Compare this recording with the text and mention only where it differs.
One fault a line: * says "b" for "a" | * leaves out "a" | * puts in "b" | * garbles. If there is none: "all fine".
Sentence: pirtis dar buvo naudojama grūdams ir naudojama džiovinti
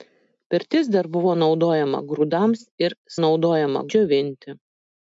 all fine